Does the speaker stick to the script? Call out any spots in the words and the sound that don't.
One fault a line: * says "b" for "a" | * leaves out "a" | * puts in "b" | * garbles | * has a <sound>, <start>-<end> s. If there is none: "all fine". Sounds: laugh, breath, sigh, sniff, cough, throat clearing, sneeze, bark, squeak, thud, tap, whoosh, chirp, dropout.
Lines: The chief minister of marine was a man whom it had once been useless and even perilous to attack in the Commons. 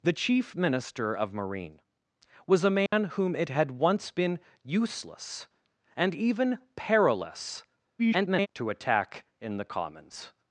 * has a dropout, 2.9-2.9 s
* garbles